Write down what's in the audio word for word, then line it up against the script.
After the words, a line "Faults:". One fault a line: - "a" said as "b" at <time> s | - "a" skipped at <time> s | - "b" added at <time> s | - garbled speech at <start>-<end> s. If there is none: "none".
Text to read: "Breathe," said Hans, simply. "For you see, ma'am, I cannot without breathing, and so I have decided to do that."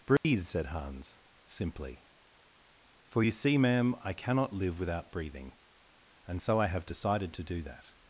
"Breathe," said Hans, simply. "For you see, ma'am, I cannot live without breathing, and so I have decided to do that."
Faults:
- "live" added at 4.5 s